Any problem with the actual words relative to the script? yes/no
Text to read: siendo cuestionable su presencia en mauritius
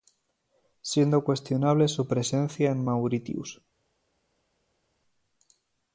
no